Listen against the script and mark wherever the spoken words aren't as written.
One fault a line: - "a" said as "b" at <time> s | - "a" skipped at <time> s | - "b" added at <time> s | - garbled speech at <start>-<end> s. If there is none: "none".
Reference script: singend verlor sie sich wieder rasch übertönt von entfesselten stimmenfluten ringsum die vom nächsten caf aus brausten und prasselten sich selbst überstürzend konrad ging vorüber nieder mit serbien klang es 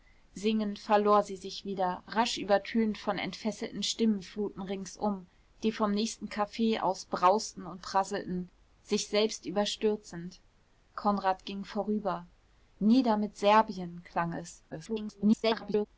- garbled speech at 14.7-15.9 s